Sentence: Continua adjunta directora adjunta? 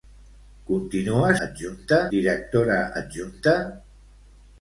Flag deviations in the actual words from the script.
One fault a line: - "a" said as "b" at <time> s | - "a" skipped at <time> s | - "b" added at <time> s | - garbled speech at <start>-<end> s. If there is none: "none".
none